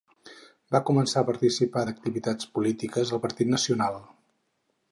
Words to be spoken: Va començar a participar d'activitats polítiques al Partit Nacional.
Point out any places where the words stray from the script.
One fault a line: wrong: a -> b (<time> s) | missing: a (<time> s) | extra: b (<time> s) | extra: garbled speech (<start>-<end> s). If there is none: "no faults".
no faults